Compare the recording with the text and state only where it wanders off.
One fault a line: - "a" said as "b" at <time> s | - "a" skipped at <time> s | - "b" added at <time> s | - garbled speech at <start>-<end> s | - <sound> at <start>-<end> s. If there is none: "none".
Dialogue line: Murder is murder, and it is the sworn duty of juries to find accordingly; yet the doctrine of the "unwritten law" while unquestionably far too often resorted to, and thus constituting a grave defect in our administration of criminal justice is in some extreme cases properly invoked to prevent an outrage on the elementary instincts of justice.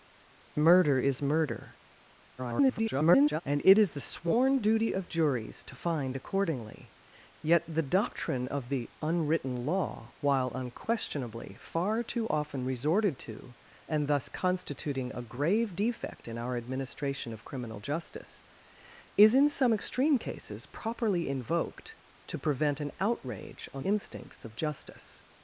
- garbled speech at 2.4-3.4 s
- "the elementary" skipped at 23.8 s